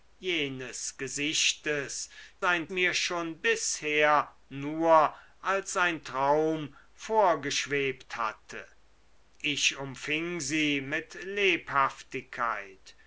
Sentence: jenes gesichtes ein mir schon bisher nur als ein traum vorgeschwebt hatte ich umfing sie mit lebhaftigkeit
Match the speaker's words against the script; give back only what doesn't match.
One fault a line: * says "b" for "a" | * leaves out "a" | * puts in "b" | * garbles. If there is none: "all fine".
all fine